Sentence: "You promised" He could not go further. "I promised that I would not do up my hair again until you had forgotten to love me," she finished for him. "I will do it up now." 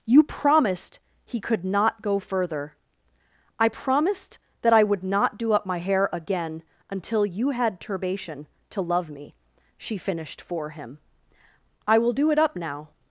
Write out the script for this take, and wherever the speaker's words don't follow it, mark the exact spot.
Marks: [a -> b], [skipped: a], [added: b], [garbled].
"You promised" He could not go further. "I promised that I would not do up my hair again until you had [forgotten -> turbation] to love me," she finished for him. "I will do it up now."